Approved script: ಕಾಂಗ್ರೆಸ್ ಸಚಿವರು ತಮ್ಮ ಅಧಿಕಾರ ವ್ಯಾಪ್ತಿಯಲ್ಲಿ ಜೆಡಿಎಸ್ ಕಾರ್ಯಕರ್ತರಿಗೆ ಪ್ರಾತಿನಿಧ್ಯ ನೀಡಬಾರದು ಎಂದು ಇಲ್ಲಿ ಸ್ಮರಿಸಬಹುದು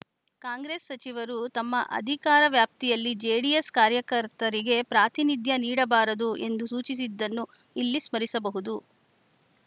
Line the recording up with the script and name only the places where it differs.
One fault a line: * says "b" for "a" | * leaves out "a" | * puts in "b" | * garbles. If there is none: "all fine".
* puts in "ಸೂಚಿಸಿದ್ದನ್ನು"